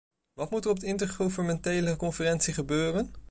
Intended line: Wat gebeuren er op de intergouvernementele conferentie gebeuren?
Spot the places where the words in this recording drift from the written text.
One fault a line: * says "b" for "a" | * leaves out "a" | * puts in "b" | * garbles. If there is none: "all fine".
* says "moet" for "gebeuren"